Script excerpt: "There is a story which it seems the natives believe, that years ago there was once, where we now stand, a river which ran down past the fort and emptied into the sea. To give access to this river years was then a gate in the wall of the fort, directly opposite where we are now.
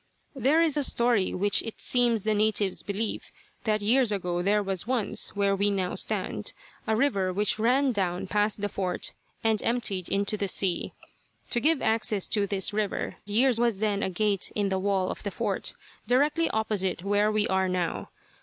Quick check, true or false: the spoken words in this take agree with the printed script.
true